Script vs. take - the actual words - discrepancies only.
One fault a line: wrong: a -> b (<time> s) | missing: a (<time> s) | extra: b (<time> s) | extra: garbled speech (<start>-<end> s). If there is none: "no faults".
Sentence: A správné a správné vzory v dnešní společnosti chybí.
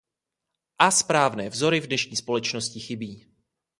missing: a správné (1.5 s)